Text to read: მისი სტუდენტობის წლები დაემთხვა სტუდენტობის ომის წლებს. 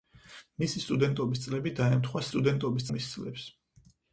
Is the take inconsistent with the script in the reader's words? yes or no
no